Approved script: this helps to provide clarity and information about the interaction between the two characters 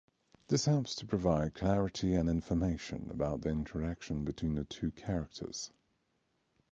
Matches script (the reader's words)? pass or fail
pass